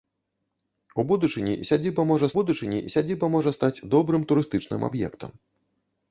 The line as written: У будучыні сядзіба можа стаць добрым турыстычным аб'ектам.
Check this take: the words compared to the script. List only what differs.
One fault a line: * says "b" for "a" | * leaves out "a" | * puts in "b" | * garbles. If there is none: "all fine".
* puts in "будучыні сядзіба можа"